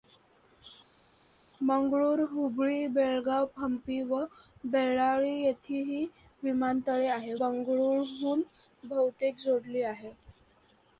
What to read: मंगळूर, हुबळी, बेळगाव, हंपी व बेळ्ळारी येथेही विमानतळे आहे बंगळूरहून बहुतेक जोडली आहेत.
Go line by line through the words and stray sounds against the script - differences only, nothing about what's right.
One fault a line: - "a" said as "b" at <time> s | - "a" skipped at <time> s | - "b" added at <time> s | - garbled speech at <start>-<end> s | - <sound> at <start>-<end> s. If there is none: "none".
none